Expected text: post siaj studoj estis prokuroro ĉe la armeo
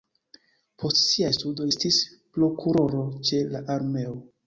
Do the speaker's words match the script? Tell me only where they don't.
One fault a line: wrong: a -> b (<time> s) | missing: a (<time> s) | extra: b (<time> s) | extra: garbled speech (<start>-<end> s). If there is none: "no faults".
no faults